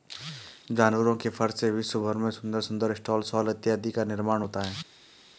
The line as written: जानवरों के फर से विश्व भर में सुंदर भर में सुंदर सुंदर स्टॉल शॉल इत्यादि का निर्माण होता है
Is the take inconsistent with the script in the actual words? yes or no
yes